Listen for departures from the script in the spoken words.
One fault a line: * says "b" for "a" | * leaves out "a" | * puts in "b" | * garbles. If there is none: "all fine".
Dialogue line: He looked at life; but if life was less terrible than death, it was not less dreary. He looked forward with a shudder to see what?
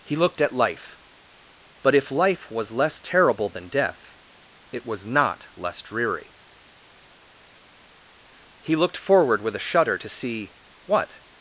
all fine